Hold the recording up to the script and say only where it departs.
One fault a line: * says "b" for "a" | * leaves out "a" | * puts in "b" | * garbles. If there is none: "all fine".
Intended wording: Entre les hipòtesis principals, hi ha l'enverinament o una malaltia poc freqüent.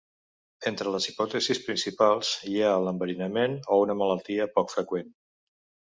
all fine